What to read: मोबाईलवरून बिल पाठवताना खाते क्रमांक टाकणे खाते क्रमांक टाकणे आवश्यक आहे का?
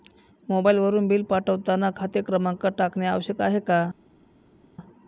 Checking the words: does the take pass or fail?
fail